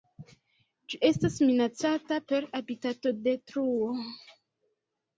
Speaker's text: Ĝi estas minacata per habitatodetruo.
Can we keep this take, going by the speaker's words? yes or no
yes